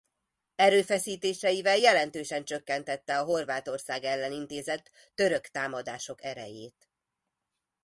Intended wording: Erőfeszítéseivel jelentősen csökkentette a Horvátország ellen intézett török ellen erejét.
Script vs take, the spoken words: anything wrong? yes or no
yes